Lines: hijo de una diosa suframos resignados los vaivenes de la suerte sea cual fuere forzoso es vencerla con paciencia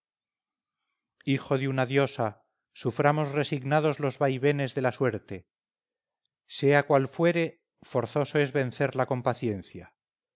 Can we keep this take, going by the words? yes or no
yes